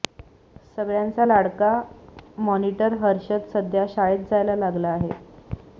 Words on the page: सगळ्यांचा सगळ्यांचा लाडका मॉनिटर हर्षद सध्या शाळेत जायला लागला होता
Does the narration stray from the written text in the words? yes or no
yes